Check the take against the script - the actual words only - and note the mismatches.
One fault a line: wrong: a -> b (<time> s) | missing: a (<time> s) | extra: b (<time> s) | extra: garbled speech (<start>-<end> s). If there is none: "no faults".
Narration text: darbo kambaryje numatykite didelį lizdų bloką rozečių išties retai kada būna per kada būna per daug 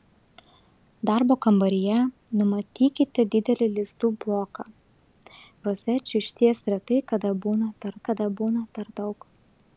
no faults